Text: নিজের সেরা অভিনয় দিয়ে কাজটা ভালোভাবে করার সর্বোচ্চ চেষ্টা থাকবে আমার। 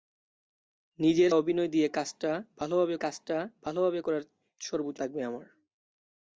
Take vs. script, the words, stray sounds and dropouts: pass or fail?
fail